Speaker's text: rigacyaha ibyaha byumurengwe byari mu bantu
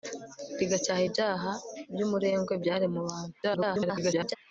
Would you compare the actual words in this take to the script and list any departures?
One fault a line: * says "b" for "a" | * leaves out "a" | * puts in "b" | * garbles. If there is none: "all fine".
* garbles